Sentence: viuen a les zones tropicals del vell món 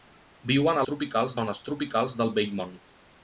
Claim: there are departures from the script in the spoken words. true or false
true